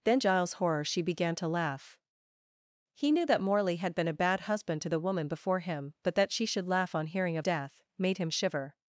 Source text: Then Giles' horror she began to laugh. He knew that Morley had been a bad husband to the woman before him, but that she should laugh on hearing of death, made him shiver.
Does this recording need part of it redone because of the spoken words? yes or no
no